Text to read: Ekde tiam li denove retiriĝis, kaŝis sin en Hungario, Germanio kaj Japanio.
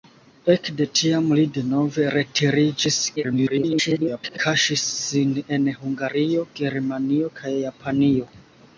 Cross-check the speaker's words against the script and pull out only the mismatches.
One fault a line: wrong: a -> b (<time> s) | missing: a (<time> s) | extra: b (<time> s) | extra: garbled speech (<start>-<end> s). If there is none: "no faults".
extra: garbled speech (3.2-4.4 s)